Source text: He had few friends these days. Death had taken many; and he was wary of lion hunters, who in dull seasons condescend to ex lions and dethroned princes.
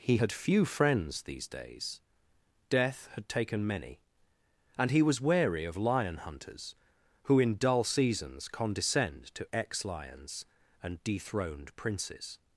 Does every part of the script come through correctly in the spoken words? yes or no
yes